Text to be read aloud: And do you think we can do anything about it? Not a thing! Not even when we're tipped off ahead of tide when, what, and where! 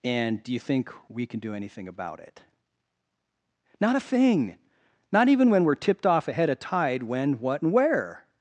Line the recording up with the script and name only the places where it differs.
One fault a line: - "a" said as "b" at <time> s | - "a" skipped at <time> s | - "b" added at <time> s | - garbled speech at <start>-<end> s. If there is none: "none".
none